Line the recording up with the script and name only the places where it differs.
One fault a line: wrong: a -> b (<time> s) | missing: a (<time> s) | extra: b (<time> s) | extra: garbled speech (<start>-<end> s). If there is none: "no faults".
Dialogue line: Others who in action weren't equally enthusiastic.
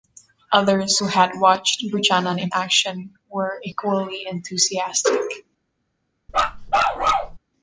extra: had watched Buchanan (1.1 s)
wrong: weren't -> were (3.3 s)